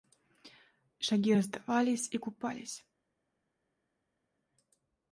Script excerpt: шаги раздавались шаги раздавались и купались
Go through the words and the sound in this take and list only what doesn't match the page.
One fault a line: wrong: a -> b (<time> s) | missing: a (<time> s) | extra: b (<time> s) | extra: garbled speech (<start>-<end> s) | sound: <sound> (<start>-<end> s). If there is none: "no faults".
missing: шаги раздавались (2.1 s)